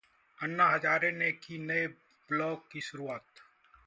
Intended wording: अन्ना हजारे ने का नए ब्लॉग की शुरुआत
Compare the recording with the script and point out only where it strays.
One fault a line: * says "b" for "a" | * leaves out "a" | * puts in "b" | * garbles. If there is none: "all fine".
* says "की" for "का"